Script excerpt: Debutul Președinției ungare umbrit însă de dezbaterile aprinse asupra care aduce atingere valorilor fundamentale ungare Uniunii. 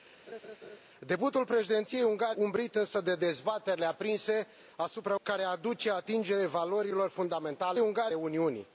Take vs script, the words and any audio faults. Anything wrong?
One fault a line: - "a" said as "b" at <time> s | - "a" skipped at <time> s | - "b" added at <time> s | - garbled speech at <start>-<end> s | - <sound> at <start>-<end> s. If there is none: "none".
- laugh at 0.3-0.8 s